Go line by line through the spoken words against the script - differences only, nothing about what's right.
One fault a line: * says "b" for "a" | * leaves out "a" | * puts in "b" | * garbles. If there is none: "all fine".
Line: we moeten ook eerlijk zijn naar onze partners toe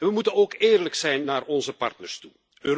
all fine